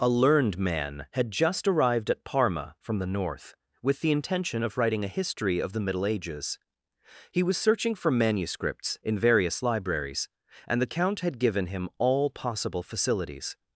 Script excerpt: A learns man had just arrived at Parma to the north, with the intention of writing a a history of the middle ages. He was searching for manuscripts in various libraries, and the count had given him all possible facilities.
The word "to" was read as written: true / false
false